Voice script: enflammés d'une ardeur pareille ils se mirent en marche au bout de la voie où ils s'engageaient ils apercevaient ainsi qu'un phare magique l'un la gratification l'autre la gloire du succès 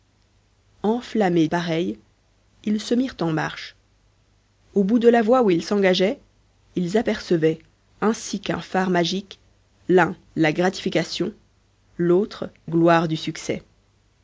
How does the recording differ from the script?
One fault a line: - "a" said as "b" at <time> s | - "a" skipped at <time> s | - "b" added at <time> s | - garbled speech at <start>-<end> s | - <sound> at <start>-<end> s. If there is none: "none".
- "d'une ardeur" skipped at 1.5 s
- "la" skipped at 12.5 s